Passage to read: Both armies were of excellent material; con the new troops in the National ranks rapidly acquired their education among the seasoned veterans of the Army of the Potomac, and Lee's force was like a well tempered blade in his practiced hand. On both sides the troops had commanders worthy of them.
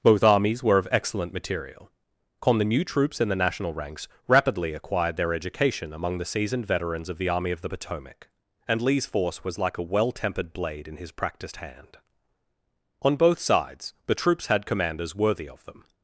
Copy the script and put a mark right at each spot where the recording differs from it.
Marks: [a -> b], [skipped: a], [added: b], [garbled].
Both armies were of excellent material; con the new troops in the National ranks rapidly acquired their education among the seasoned veterans of the Army of the Potomac, and Lee's force was like a well tempered blade in his practiced hand. On both sides the troops had commanders worthy of them.